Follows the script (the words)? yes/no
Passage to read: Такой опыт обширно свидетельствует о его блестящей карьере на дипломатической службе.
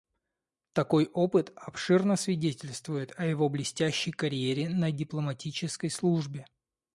yes